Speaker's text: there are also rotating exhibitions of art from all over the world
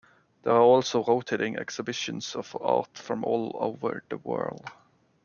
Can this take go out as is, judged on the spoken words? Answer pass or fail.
pass